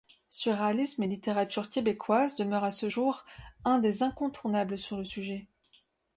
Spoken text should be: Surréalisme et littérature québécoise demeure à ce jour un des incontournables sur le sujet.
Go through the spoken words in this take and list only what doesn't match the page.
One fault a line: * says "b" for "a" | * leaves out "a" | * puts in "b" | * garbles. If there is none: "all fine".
all fine